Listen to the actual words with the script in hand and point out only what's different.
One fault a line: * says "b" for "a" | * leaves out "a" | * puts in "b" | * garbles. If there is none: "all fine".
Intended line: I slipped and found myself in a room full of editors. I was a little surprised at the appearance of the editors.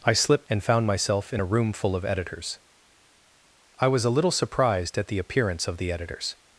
all fine